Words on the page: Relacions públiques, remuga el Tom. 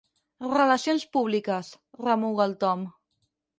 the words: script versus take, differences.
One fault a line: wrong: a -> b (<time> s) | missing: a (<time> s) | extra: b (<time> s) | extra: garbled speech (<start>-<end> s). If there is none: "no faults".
no faults